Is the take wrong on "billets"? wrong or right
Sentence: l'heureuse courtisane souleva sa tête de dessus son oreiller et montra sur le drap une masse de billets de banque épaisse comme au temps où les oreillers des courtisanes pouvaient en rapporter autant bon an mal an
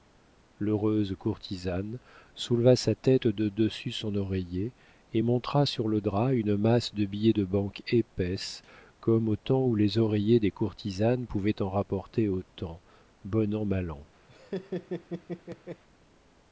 right